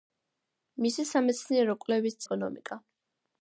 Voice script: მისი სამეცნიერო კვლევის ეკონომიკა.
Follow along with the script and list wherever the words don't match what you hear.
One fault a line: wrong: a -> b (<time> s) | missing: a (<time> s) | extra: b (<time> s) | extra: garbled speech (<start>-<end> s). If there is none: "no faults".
no faults